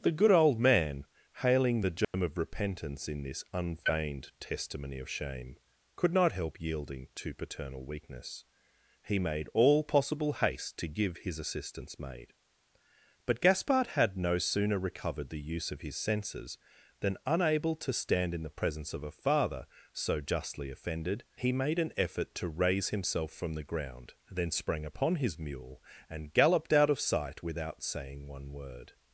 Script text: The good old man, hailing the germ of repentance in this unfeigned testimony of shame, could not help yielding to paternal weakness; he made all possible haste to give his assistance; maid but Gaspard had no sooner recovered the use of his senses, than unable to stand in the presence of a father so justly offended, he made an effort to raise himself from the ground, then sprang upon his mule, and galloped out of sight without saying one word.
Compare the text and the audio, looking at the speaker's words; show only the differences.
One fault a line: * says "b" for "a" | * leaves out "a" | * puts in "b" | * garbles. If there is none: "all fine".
all fine